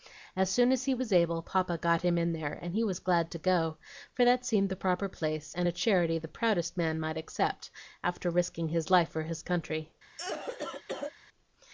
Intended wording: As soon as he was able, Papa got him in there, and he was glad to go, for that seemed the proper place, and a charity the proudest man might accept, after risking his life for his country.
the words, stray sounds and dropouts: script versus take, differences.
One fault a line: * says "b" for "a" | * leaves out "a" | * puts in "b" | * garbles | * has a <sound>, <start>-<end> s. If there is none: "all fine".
* has a cough, 10.2-11.1 s